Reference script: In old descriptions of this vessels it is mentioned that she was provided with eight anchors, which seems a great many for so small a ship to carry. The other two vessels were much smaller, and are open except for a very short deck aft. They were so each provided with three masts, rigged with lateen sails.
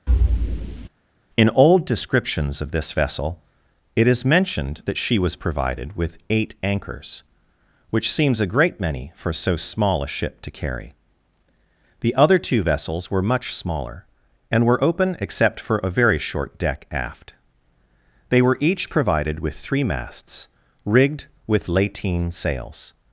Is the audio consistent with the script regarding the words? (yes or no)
no